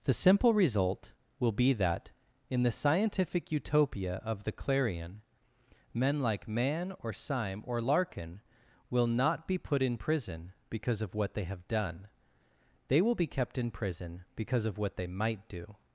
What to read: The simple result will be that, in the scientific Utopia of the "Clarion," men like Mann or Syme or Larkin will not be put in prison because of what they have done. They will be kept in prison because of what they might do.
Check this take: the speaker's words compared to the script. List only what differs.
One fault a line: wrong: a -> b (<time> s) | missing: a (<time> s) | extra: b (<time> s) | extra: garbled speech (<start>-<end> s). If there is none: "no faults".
no faults